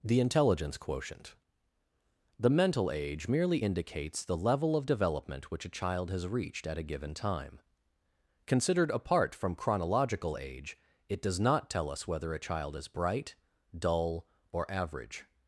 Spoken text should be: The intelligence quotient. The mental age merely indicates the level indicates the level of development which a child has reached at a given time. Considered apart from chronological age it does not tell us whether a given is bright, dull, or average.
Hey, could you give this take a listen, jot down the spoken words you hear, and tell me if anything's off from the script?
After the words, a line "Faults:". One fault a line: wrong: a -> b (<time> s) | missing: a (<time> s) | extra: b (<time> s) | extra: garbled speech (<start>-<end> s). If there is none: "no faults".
The intelligence quotient. The mental age merely indicates the level of development which a child has reached at a given time. Considered apart from chronological age it does not tell us whether a child is bright, dull, or average.
Faults:
missing: indicates the level (4.8 s)
wrong: given -> child (12.4 s)